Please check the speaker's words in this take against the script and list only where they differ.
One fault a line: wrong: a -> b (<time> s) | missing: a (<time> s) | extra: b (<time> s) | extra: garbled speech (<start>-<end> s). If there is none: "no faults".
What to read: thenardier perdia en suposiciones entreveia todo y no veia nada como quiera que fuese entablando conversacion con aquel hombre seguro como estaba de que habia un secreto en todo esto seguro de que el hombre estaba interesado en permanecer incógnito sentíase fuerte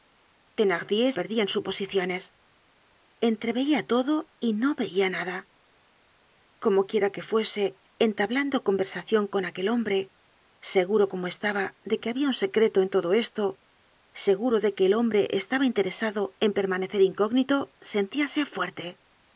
no faults